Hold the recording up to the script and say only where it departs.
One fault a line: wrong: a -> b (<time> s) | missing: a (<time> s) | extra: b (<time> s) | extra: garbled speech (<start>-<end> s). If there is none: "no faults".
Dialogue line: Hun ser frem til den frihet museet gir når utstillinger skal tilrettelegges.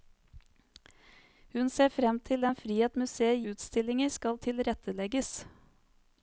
missing: gir når (3.4 s)